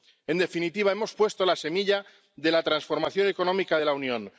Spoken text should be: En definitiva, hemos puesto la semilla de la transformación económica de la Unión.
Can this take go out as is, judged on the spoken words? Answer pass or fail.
pass